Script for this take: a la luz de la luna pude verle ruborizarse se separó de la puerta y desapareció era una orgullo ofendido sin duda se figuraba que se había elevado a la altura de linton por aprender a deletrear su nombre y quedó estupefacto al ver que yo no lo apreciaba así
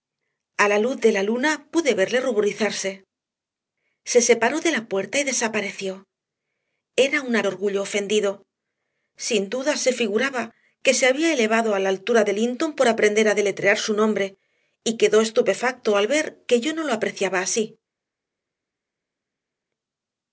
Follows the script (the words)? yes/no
yes